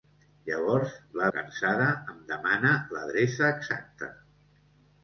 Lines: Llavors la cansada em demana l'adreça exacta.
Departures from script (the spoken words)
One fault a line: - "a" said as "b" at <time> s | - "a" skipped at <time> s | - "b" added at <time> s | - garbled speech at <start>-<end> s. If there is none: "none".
none